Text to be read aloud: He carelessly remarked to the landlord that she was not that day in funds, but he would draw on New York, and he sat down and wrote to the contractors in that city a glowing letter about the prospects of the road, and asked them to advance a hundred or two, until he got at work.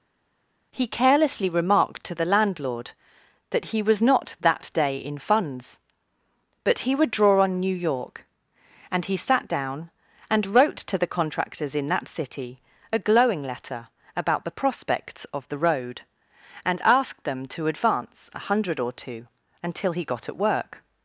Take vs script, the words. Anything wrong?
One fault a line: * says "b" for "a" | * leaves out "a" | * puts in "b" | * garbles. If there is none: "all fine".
* says "he" for "she"